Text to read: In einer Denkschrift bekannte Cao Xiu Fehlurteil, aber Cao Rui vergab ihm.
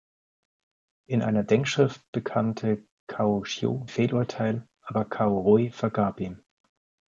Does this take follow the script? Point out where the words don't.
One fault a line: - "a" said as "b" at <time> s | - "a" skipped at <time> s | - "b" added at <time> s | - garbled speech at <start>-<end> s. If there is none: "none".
none